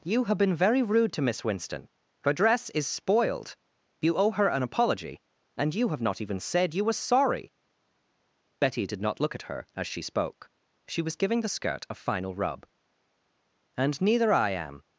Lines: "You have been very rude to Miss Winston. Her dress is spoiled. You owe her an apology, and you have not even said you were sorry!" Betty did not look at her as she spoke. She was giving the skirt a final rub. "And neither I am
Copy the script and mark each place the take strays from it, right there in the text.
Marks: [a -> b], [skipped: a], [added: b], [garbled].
"You have been very rude to Miss Winston. Her dress is spoiled. You owe her an apology, and you have not even said you were sorry!" Betty did not look at her as she spoke. She was giving the skirt a final rub. "And neither I am